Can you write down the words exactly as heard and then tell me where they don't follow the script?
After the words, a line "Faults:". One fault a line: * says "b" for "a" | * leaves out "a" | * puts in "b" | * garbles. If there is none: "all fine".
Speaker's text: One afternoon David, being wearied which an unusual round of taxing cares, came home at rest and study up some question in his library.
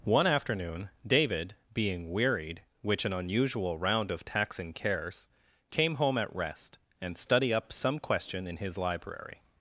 One afternoon David, being wearied which an unusual round of taxing cares, came home at rest and study up some question in his library.
Faults:
all fine